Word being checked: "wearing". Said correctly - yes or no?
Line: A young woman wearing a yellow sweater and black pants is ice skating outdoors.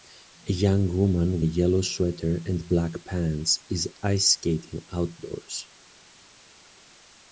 no